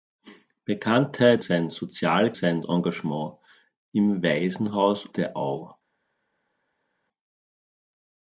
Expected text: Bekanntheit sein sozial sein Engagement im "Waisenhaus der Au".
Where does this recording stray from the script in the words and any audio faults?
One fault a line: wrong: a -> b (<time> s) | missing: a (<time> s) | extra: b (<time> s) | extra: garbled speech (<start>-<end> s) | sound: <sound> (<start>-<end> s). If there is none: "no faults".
no faults